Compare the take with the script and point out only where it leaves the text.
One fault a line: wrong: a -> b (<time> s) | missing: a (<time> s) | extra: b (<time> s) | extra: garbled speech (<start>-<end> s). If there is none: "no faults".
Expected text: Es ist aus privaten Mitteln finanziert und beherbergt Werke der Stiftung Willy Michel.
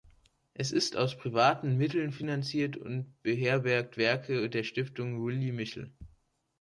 no faults